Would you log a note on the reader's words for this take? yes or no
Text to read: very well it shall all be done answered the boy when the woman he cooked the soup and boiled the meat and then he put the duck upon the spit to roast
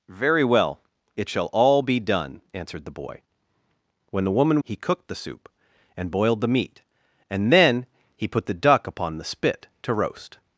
no